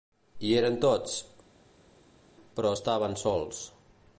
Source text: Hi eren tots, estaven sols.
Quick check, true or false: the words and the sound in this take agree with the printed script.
false